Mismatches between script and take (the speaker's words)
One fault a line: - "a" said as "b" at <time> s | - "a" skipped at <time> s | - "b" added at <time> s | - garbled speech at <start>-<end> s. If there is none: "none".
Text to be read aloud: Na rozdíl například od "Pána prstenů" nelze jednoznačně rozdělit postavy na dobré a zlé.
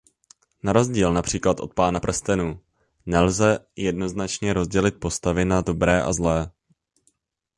none